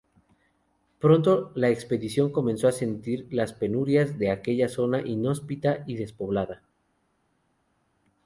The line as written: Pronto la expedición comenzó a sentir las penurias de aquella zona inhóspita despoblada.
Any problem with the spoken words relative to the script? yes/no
yes